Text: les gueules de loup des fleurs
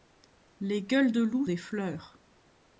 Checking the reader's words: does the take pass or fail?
pass